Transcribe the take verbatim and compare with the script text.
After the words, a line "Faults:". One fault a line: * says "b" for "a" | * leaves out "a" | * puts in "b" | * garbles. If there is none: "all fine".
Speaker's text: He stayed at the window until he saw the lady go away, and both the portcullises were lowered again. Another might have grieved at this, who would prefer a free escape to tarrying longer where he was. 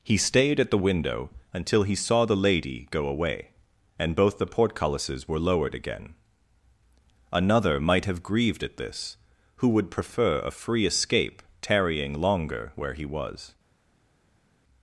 He stayed at the window until he saw the lady go away, and both the portcullises were lowered again. Another might have grieved at this, who would prefer a free escape tarrying longer where he was.
Faults:
* leaves out "to"